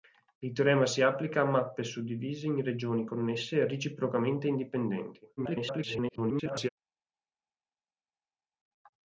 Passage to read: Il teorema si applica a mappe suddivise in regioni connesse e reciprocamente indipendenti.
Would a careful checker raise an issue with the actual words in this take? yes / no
yes